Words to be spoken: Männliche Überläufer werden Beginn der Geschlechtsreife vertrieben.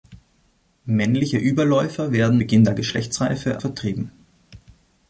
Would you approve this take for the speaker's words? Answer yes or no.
yes